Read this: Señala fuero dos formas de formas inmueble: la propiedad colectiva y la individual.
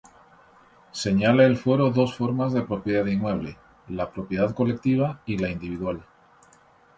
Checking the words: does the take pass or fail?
fail